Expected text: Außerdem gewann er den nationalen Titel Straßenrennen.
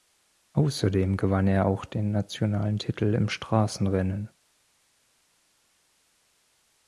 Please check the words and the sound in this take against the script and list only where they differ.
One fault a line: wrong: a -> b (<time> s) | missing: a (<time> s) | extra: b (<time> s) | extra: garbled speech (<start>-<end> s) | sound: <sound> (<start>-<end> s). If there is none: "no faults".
extra: auch (1.7 s)
extra: im (3.1 s)